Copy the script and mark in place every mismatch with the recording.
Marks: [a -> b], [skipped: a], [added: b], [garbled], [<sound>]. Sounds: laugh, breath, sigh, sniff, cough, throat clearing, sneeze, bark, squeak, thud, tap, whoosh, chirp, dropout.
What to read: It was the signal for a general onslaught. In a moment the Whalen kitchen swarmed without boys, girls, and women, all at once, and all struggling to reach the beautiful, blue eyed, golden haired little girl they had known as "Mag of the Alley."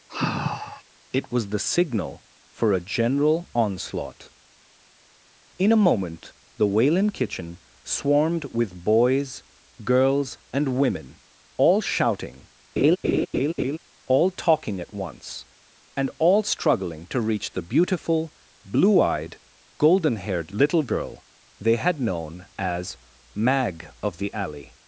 [sigh] It was the signal for a general onslaught. In a moment the Whalen kitchen swarmed [without -> with] boys, girls, and women, all [added: shouting all talking] [laugh] at once, and all struggling to reach the beautiful, blue eyed, golden haired little girl they had known as "Mag of the Alley."